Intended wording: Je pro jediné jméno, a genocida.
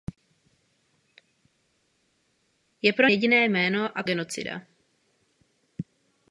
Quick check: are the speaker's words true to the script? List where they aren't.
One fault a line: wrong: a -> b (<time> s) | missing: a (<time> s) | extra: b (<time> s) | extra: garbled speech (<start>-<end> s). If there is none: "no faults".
no faults